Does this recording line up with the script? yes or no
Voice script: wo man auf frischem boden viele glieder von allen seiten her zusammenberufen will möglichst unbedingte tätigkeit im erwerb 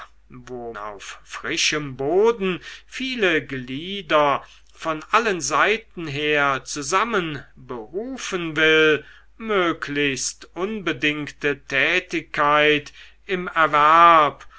no